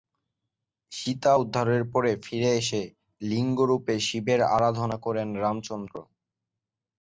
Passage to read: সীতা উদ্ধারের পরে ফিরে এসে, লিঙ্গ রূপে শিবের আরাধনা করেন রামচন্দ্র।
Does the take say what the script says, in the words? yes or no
yes